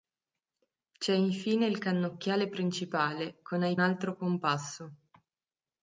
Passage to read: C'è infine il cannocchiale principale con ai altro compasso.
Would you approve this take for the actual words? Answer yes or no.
yes